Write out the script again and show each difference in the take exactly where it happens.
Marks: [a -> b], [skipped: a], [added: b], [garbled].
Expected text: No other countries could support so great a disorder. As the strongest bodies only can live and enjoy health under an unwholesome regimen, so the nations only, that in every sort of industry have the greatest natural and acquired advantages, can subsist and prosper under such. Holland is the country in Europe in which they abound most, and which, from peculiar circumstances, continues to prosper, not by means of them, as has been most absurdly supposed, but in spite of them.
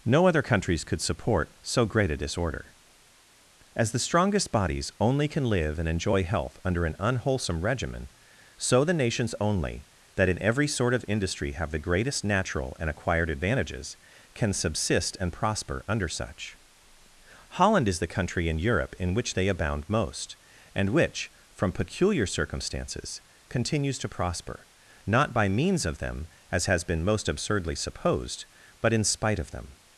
No other countries could support so great a disorder. As the strongest bodies only can live and enjoy health under an unwholesome regimen, so the nations only, that in every sort of industry have the greatest natural and acquired advantages, can subsist and prosper under such. Holland is the country in Europe in which they abound most, and which, from peculiar circumstances, continues to prosper, not by means of them, as has been most absurdly supposed, but in spite of them.